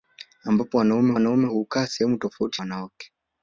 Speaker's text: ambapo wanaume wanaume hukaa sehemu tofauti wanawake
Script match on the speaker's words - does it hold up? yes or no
yes